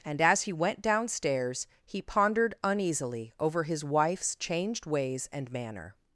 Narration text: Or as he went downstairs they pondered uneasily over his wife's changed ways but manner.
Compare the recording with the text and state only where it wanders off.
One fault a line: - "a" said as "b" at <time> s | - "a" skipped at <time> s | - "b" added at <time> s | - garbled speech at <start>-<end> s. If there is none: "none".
- "Or" said as "And" at 0.0 s
- "they" said as "he" at 1.9 s
- "but" said as "and" at 5.3 s